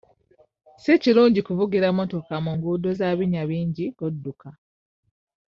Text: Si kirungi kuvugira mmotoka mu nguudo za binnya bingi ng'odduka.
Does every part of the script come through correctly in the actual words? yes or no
yes